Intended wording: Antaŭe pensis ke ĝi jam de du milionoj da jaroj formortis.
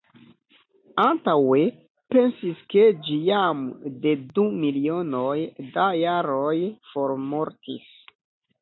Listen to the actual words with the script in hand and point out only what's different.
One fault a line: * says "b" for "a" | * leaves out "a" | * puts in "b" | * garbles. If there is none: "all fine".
all fine